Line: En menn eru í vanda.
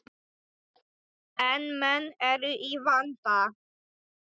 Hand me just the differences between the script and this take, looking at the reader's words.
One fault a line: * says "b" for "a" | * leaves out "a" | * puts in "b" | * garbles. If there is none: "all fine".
all fine